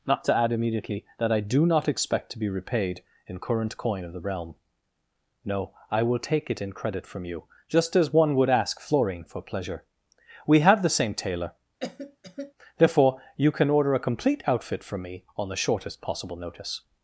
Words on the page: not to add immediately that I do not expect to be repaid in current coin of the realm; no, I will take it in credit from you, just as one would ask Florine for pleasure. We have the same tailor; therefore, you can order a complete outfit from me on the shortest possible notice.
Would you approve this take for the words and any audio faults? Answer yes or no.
no